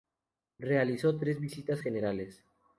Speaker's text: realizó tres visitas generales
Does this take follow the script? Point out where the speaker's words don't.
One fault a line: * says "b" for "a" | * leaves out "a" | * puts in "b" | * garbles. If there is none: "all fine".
all fine